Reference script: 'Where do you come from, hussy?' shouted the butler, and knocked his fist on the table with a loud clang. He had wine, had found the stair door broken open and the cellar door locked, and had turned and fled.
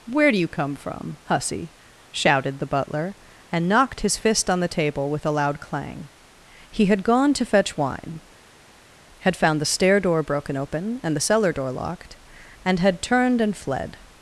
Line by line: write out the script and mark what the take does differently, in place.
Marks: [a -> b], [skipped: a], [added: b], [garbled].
'Where do you come from, hussy?' shouted the butler, and knocked his fist on the table with a loud clang. He had [added: gone to fetch] wine, had found the stair door broken open and the cellar door locked, and had turned and fled.